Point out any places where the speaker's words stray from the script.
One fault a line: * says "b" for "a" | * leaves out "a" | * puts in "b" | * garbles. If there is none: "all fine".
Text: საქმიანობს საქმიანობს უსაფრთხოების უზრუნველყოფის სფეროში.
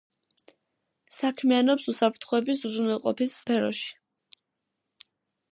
* leaves out "საქმიანობს"